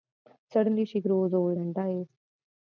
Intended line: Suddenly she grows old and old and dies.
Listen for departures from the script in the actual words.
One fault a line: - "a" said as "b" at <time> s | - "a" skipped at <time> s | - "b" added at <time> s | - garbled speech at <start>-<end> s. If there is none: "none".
- "old and" skipped at 1.7 s